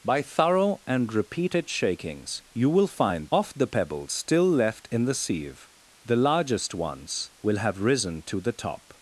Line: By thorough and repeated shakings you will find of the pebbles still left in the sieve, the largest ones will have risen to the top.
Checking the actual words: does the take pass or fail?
pass